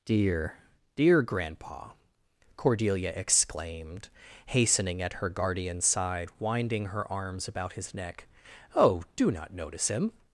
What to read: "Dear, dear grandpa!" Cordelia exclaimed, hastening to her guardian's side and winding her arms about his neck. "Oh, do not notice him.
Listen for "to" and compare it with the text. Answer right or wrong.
wrong